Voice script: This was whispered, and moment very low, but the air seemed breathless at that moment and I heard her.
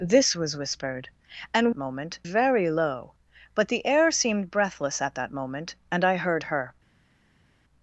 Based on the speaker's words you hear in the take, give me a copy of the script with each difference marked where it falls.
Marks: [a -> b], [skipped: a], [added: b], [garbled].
This was whispered, and moment very low, but the air seemed breathless at that moment and I heard her.